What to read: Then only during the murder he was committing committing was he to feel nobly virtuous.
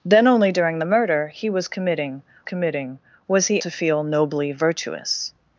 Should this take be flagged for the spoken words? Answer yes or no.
no